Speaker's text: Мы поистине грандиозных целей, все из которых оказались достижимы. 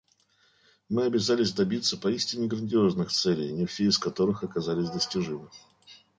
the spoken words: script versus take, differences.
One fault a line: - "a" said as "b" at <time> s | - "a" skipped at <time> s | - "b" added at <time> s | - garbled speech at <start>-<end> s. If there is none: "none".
- "обязались добиться" added at 1.1 s
- "не" added at 3.5 s